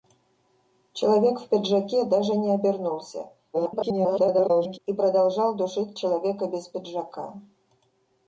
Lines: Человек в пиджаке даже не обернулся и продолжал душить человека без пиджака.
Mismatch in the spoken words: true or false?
true